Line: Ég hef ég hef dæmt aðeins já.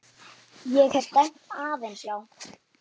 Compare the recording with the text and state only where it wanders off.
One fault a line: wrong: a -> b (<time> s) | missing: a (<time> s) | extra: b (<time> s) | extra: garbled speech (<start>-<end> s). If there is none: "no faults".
missing: ég hef (1.1 s)